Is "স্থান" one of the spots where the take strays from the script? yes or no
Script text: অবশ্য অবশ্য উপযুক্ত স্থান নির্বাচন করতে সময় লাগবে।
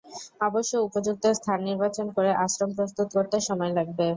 no